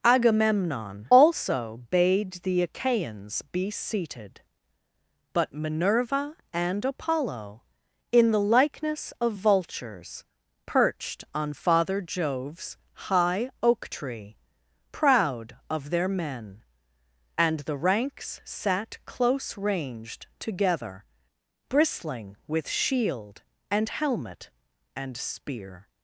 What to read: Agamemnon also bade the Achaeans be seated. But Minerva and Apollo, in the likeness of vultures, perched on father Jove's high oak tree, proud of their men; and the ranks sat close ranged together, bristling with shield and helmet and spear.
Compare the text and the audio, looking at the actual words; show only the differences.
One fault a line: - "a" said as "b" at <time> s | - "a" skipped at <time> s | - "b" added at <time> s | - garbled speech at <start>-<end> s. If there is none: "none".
none